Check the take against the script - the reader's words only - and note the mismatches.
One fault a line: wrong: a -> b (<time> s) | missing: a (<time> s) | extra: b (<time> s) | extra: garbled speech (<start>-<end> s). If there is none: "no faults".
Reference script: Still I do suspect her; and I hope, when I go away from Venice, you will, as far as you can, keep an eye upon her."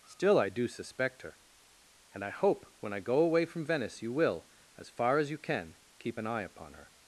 no faults